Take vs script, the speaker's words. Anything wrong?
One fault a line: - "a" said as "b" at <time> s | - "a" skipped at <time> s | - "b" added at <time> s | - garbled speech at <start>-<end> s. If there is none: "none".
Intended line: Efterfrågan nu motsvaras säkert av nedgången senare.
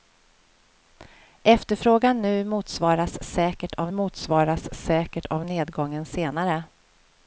- "motsvaras säkert av" added at 3.9 s